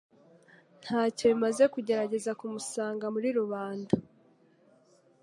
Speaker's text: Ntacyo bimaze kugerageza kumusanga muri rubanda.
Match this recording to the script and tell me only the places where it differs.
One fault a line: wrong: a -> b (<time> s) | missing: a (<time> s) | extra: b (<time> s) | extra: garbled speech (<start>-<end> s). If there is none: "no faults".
no faults